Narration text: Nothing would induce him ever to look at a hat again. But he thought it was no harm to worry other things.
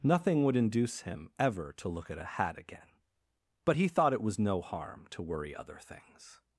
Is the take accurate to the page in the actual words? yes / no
yes